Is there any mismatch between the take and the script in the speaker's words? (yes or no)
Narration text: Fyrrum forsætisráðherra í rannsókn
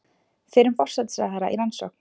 no